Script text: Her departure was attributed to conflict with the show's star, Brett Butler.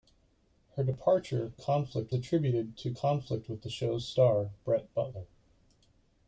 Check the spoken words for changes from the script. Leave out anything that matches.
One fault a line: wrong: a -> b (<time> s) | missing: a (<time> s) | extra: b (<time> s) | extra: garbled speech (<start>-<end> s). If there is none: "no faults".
wrong: was -> conflict (1.5 s)